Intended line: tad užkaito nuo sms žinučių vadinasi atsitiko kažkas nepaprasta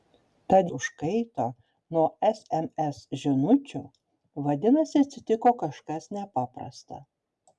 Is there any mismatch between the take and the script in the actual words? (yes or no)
no